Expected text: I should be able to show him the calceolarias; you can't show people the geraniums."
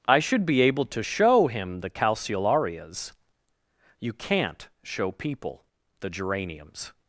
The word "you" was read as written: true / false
true